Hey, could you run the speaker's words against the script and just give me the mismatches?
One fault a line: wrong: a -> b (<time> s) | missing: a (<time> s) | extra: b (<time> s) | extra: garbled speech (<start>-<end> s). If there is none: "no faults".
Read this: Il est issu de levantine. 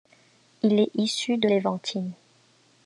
no faults